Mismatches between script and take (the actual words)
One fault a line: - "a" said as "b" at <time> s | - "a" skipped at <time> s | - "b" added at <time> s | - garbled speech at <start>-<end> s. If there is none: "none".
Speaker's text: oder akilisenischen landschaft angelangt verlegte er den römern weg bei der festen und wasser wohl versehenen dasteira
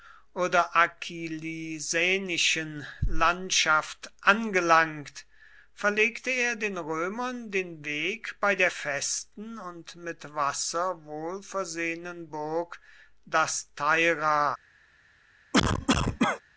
- "den" added at 7.5 s
- "mit" added at 9.9 s
- "burg" added at 12.3 s